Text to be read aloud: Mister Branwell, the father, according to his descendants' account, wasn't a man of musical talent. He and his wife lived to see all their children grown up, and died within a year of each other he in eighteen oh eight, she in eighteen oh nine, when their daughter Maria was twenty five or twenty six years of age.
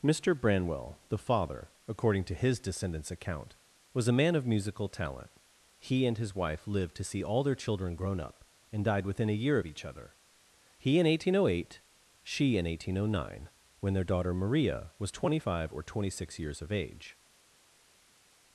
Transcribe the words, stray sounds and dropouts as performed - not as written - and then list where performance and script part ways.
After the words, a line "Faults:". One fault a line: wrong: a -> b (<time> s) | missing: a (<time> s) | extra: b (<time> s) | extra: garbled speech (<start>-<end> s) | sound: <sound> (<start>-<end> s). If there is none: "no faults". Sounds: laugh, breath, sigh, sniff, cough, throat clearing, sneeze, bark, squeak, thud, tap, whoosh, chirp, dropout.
Mister Branwell, the father, according to his descendants' account, was a man of musical talent. He and his wife lived to see all their children grown up, and died within a year of each other he in eighteen oh eight, she in eighteen oh nine, when their daughter Maria was twenty five or twenty six years of age.
Faults:
wrong: wasn't -> was (3.9 s)